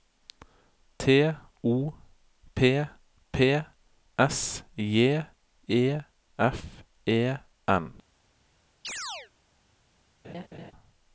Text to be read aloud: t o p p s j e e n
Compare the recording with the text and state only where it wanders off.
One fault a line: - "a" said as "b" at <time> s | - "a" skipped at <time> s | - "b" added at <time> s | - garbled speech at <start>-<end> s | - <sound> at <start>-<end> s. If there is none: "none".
- "f" added at 6.4 s
- chirp at 8.8-9.3 s
- laugh at 10.2-10.7 s